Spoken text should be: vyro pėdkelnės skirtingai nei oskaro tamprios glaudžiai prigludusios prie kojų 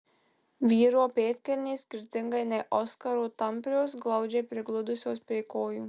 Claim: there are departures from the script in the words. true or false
false